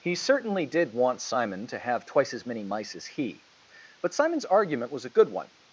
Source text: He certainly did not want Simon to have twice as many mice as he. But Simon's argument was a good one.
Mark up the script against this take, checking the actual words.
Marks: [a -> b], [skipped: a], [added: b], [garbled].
He certainly did [skipped: not] want Simon to have twice as many mice as he. But Simon's argument was a good one.